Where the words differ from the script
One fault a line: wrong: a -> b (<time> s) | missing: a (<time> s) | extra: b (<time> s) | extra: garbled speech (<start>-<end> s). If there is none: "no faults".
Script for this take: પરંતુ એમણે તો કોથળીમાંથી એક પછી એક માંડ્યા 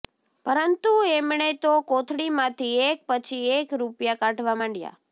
extra: રૂપિયા કાઢવા (3.8 s)